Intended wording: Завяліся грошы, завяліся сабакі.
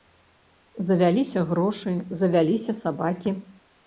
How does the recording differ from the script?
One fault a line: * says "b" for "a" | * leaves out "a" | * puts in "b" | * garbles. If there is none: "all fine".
all fine